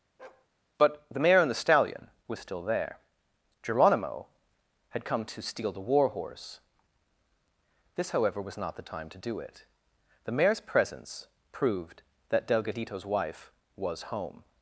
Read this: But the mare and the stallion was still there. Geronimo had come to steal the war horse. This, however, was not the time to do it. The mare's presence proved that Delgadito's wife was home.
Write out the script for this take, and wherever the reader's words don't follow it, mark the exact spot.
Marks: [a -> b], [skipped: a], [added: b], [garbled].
But the mare and the stallion was still there. Geronimo had come to steal the war horse. This, however, was not the time to do it. The mare's presence proved that Delgadito's wife was home.